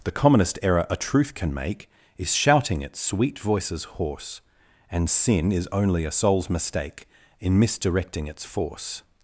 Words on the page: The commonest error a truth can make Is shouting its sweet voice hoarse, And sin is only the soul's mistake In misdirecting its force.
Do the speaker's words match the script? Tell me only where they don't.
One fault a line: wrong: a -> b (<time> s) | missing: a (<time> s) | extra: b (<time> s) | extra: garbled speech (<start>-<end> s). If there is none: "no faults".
wrong: voice -> voices (3.4 s)
wrong: the -> a (6.1 s)